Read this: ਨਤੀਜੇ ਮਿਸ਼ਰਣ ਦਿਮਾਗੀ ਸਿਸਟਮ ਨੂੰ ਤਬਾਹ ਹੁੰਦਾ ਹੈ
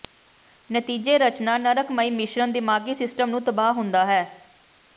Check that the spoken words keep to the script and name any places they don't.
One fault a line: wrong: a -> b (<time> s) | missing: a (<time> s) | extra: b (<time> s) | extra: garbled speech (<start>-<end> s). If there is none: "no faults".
extra: ਰਚਨਾ ਨਰਕਮਈ (1.2 s)